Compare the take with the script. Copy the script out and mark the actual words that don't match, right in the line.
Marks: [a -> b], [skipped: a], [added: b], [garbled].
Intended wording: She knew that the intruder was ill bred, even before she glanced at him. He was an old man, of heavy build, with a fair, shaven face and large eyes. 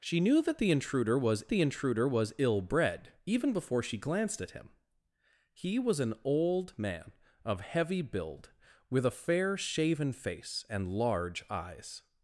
She knew that the intruder was [added: the intruder was] ill bred, even before she glanced at him. He was an old man, of heavy build, with a fair, shaven face and large eyes.